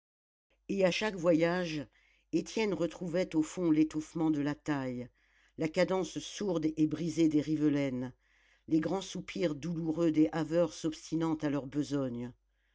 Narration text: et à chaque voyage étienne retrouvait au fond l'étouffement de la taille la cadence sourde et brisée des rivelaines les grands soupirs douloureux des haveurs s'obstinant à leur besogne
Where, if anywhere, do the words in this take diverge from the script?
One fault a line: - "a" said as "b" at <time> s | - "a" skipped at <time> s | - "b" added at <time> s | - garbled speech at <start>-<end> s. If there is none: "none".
none